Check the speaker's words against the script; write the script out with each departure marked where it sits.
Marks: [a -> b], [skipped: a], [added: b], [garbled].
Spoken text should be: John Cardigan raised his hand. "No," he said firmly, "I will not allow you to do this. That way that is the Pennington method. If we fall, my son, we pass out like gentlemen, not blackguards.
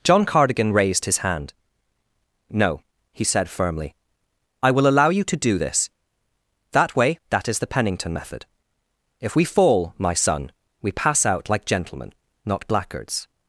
John Cardigan raised his hand. "No," he said firmly, "I will [skipped: not] allow you to do this. That way that is the Pennington method. If we fall, my son, we pass out like gentlemen, not blackguards.